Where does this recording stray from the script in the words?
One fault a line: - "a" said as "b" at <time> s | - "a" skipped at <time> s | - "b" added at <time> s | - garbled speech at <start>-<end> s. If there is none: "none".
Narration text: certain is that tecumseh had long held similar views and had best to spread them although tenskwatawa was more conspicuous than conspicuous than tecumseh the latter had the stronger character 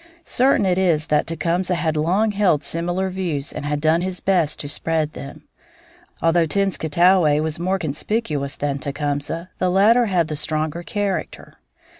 - "it" added at 0.7 s
- "done his" added at 3.8 s
- "conspicuous than" skipped at 8.8 s